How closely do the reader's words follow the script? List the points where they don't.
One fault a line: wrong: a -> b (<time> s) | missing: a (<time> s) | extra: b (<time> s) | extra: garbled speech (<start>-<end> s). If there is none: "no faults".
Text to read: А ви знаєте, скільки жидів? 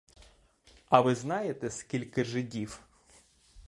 no faults